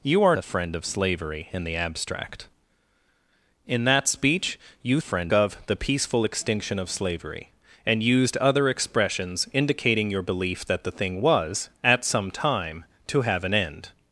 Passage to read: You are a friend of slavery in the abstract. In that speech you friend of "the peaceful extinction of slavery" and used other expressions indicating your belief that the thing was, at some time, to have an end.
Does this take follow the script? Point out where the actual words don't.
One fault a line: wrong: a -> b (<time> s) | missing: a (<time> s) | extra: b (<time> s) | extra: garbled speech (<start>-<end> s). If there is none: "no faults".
no faults